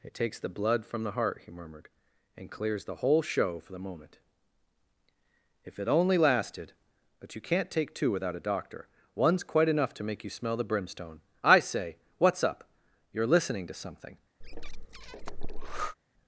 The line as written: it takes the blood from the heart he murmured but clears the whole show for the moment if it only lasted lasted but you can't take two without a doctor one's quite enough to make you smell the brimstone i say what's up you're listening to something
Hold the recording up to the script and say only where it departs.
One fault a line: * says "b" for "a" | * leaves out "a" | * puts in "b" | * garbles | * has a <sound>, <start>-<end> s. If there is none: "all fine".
* says "and" for "but"
* leaves out "lasted"
* has a breath, 14.4-15.9 s